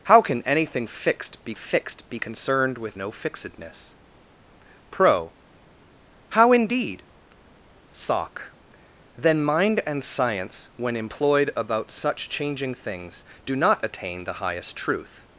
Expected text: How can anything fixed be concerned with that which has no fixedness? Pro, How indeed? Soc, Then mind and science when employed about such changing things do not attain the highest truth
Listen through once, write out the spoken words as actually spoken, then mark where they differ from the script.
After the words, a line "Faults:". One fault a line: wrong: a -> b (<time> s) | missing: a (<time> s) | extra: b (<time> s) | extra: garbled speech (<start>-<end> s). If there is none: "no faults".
How can anything fixed be fixed be concerned with no fixedness? Pro, How indeed? Soc, Then mind and science when employed about such changing things do not attain the highest truth
Faults:
extra: fixed be (1.5 s)
missing: that which has (3.0 s)